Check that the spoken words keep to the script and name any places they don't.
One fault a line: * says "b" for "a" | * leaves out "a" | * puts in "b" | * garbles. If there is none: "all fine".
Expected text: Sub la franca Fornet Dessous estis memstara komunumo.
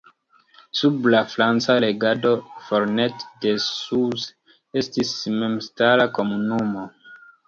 * puts in "regado"